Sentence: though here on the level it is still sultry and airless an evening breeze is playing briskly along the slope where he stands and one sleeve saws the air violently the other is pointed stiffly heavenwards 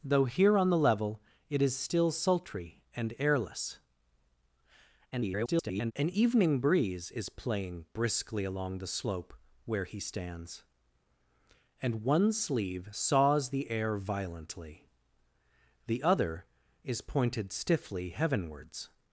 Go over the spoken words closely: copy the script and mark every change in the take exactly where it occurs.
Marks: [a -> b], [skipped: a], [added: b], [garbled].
though here on the level it is still sultry and airless [garbled] an evening breeze is playing briskly along the slope where he stands and one sleeve saws the air violently the other is pointed stiffly heavenwards